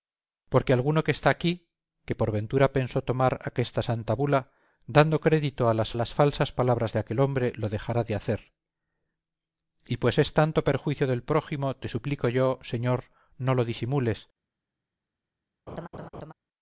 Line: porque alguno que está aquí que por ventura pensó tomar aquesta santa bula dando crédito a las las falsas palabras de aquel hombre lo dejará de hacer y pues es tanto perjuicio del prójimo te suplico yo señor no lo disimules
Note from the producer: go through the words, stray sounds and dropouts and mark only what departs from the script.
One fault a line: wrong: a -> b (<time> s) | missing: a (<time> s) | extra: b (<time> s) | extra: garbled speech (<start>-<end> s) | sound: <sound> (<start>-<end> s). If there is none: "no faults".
sound: laugh (15.7-16.3 s)